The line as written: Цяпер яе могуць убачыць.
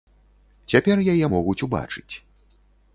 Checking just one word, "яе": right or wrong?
right